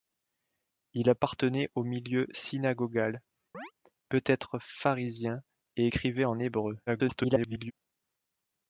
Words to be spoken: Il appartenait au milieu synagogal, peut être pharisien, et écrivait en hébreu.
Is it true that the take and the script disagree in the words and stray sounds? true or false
true